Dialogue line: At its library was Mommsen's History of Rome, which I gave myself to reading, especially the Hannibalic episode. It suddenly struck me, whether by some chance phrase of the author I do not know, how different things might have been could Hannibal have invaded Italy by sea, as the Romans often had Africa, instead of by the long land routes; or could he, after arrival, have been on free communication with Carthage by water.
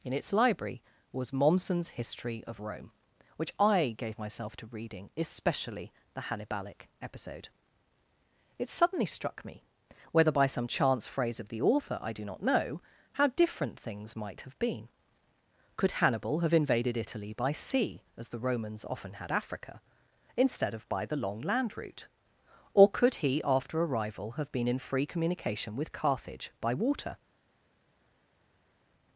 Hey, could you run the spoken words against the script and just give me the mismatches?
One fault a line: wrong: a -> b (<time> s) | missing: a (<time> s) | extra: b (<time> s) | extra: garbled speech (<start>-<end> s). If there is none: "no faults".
wrong: At -> In (0.0 s)
wrong: routes -> route (21.8 s)
wrong: on -> in (24.7 s)